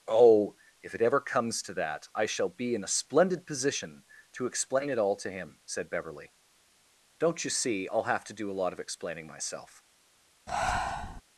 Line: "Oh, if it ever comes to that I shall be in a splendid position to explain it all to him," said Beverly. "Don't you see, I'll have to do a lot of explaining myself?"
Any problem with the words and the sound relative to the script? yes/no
yes